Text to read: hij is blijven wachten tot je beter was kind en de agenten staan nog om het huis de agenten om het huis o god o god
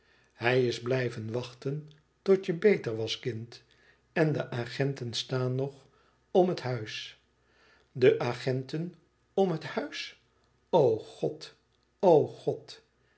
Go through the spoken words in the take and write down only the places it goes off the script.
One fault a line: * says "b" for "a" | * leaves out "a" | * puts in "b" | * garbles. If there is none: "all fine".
all fine